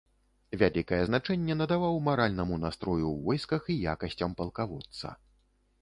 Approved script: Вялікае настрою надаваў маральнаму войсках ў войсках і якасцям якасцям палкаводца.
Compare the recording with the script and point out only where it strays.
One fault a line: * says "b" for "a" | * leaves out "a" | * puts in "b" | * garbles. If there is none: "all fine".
* says "значэнне" for "настрою"
* says "настрою" for "войсках"
* leaves out "якасцям"